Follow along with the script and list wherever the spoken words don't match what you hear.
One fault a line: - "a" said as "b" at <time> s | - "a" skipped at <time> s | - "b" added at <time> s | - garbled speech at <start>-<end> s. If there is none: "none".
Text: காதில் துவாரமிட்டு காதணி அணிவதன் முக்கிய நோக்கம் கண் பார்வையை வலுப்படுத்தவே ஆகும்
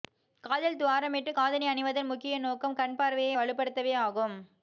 none